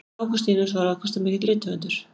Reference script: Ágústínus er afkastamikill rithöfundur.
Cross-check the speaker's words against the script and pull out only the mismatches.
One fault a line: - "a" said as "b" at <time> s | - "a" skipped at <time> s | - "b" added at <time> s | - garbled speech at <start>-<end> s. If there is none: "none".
- "er" said as "var" at 0.7 s